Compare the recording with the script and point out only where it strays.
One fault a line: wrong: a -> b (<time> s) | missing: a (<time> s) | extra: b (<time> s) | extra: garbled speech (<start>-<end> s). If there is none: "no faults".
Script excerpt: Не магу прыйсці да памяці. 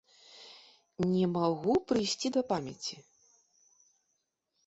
no faults